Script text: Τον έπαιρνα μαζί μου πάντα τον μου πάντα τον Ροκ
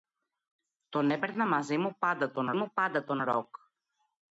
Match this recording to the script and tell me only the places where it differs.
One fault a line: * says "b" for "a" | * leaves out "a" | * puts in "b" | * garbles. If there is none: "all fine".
all fine